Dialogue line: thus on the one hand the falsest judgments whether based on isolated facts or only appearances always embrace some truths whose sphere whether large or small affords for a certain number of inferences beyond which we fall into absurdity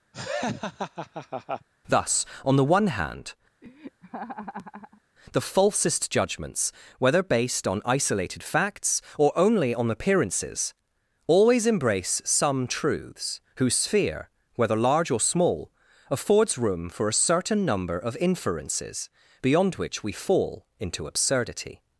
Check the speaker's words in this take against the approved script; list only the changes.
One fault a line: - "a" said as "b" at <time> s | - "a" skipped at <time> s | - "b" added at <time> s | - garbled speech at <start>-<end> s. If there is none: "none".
- "on" added at 9.8 s
- "room" added at 16.6 s